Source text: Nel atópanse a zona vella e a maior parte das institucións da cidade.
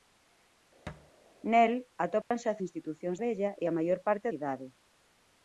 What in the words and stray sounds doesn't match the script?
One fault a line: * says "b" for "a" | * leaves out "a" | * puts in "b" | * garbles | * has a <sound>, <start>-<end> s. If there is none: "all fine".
* has a thud, 0.9-1.1 s
* has a dropout, 2.2-2.3 s
* says "institucións" for "zona"
* leaves out "das institucións da"